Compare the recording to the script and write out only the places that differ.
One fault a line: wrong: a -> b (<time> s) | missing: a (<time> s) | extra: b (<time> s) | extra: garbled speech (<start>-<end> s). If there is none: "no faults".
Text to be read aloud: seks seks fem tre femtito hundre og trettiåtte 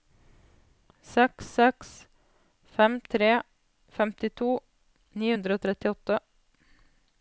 extra: ni (5.2 s)